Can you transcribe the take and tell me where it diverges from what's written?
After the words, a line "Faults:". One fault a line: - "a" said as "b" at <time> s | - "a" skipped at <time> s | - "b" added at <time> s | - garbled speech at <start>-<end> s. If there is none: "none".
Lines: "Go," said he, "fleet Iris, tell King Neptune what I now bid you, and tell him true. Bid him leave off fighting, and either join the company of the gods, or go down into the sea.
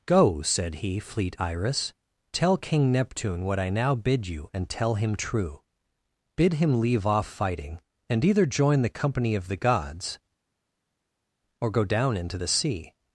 "Go," said he, "fleet Iris, tell King Neptune what I now bid you, and tell him true. Bid him leave off fighting, and either join the company of the gods, or go down into the sea.
Faults:
none